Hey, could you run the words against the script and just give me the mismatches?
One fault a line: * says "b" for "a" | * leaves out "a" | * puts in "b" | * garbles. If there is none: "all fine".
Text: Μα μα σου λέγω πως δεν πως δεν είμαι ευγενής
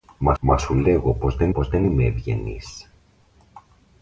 all fine